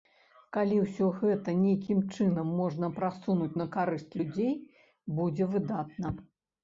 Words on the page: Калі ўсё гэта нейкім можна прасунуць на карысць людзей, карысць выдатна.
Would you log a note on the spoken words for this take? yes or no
yes